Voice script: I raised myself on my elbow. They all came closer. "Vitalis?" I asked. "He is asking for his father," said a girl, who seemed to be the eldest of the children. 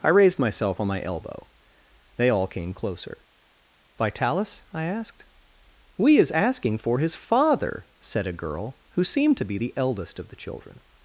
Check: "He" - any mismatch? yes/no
yes